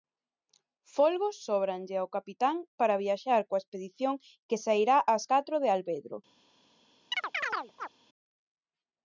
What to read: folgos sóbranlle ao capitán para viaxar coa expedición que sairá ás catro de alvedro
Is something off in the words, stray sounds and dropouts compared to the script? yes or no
yes